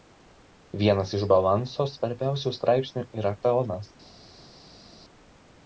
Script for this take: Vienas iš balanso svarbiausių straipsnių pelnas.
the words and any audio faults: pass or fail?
fail